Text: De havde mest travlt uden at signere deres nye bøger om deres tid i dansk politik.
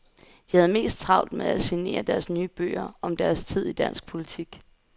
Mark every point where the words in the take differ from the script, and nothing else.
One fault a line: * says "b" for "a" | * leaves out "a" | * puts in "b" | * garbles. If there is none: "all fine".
* says "med" for "uden"